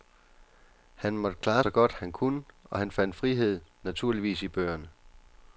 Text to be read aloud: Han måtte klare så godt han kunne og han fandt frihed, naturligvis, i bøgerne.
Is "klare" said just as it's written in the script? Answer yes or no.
yes